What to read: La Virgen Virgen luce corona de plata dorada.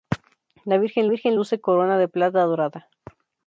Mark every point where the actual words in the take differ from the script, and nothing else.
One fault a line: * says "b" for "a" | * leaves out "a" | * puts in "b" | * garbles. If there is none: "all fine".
all fine